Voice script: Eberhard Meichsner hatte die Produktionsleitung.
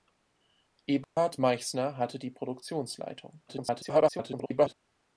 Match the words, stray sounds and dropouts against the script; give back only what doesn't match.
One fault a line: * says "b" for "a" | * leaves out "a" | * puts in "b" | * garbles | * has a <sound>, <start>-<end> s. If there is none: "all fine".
* has a dropout, 1.0-1.2 s
* garbles